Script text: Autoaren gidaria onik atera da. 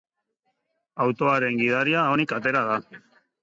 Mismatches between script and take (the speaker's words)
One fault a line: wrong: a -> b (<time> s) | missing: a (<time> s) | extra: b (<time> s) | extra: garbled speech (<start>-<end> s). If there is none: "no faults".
no faults